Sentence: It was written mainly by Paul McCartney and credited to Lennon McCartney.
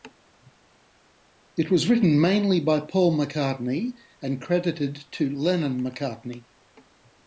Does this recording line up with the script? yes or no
yes